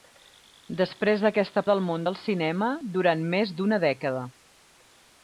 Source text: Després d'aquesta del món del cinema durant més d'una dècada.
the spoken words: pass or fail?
pass